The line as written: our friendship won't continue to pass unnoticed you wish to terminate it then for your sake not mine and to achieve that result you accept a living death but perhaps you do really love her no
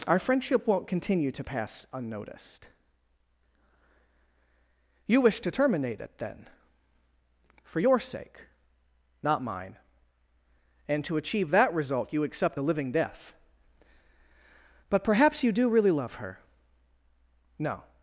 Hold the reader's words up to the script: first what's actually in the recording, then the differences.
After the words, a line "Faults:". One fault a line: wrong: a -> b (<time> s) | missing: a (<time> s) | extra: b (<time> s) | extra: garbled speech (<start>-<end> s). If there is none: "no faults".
our friendship won't continue to pass unnoticed you wish to terminate it then for your sake not mine and to achieve that result you accept a living death but perhaps you do really love her no
Faults:
no faults